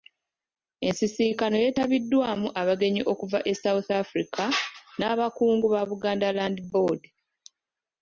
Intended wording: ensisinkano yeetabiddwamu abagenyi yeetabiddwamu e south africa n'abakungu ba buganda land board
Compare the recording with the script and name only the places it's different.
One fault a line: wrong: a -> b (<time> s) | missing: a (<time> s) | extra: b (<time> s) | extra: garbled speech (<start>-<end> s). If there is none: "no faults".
wrong: yeetabiddwamu -> okuva (3.1 s)